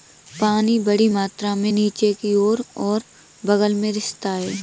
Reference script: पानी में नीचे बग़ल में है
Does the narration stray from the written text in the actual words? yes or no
yes